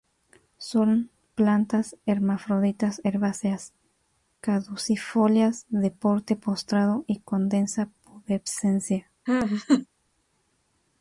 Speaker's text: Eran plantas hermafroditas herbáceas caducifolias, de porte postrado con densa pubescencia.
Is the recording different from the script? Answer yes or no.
yes